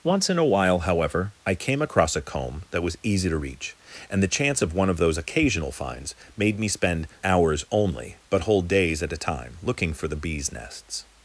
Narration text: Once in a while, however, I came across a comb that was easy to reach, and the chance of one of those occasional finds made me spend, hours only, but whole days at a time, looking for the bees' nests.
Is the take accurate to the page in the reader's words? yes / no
yes